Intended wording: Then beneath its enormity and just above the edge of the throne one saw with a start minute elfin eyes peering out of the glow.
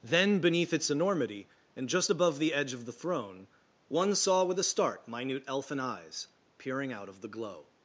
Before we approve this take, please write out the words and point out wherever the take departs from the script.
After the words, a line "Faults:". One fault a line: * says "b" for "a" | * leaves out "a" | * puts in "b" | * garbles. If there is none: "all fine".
Then beneath its enormity and just above the edge of the throne one saw with a start minute elfin eyes peering out of the glow.
Faults:
all fine